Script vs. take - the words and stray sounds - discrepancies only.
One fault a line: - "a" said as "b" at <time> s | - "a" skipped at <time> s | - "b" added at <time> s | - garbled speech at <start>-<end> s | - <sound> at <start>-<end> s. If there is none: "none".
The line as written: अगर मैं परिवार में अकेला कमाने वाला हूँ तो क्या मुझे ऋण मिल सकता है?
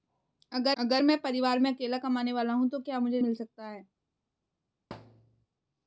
- "अगर" added at 0.8 s
- "ऋण" skipped at 3.2 s
- thud at 4.9-5.5 s